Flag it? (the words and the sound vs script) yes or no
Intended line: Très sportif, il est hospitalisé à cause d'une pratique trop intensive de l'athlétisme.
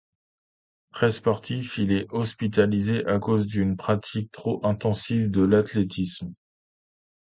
no